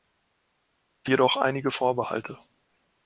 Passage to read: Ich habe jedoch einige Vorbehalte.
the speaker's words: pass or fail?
fail